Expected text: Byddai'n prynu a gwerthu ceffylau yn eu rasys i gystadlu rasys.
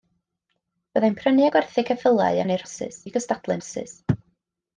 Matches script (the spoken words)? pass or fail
pass